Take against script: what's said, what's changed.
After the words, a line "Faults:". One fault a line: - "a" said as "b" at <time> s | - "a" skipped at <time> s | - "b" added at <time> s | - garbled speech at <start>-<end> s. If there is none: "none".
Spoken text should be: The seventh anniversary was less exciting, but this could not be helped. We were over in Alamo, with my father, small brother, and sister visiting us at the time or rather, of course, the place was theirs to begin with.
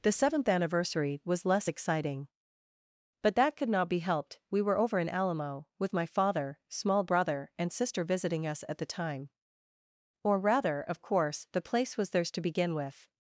The seventh anniversary was less exciting, but that could not be helped. We were over in Alamo, with my father, small brother, and sister visiting us at the time or rather, of course, the place was theirs to begin with.
Faults:
- "this" said as "that" at 3.3 s